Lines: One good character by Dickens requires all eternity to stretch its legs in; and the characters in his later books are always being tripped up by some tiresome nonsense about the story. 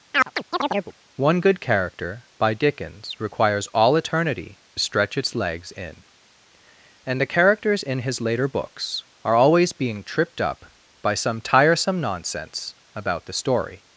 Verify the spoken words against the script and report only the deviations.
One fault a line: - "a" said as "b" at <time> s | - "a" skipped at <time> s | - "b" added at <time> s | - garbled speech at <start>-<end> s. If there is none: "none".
- "to" skipped at 4.6 s